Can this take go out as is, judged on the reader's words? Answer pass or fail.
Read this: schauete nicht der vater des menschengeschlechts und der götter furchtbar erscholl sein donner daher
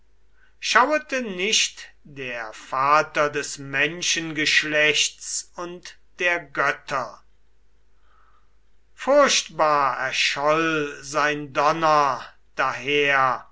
pass